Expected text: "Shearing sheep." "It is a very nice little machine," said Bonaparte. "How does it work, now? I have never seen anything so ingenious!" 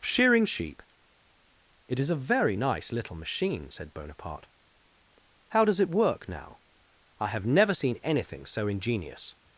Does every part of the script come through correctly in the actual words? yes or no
yes